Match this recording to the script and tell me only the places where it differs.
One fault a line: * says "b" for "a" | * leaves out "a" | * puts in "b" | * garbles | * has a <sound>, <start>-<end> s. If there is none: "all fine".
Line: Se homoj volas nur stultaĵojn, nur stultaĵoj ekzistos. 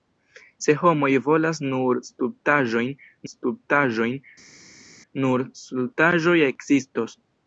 * puts in "stultaĵojn"